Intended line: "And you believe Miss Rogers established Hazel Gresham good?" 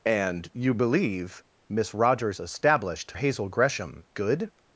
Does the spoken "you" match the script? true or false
true